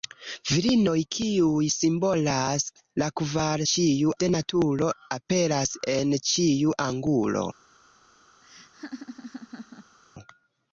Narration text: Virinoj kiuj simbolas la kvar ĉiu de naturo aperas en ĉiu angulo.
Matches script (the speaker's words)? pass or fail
pass